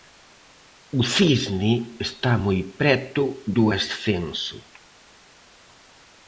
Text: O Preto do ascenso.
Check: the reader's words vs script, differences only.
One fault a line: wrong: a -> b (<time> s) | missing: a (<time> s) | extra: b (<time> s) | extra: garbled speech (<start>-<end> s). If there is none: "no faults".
extra: Cisne está moi (1.1 s)